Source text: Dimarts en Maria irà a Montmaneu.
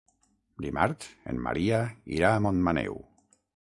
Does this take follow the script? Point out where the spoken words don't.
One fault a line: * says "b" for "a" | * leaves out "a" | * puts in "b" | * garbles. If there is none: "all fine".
all fine